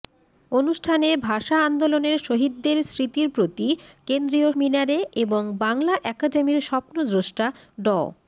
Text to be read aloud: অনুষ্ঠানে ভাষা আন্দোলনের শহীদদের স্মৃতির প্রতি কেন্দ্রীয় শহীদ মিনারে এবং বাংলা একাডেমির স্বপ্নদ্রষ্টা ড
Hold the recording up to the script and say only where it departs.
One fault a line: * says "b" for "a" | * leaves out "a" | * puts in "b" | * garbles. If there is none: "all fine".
* leaves out "শহীদ"